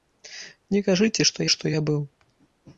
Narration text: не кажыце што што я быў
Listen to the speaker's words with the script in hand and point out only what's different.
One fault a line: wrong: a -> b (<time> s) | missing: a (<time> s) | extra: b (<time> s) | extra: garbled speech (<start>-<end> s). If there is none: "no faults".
no faults